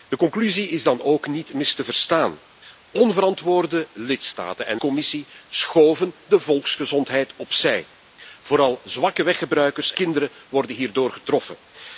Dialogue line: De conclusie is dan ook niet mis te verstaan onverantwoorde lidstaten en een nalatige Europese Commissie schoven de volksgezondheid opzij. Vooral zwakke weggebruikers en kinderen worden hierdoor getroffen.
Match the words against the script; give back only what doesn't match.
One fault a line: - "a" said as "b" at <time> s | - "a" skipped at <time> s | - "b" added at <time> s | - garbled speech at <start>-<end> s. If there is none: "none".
- "een nalatige Europese" skipped at 4.8 s
- "en" skipped at 9.9 s